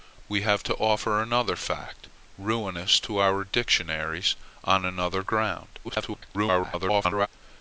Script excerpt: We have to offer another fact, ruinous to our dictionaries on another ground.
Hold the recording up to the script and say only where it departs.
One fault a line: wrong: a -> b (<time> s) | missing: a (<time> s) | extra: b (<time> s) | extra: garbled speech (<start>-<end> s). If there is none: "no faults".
extra: garbled speech (5.8-7.3 s)